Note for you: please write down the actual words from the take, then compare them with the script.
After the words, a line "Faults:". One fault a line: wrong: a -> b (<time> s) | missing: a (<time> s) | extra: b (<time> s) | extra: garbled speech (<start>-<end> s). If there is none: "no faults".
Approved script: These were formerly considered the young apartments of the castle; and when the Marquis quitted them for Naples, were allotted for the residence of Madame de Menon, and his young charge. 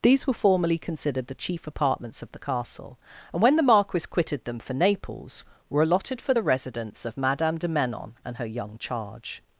These were formerly considered the chief apartments of the castle; and when the Marquis quitted them for Naples, were allotted for the residence of Madame de Menon, and her young charge.
Faults:
wrong: young -> chief (1.4 s)
wrong: his -> her (8.3 s)